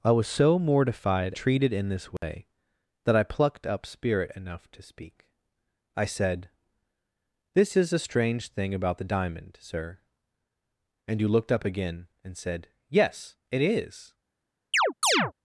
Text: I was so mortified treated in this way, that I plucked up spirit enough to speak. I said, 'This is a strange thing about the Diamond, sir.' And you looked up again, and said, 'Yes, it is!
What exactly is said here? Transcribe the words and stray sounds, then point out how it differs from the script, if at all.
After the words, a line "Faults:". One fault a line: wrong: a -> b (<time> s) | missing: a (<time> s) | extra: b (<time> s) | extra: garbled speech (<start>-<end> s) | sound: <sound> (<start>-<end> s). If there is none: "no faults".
I was so mortified treated in this way, that I plucked up spirit enough to speak. I said, 'This is a strange thing about the Diamond, sir.' And you looked up again, and said, 'Yes, it is!
Faults:
sound: dropout (2.2-2.2 s)
sound: chirp (14.7-15.3 s)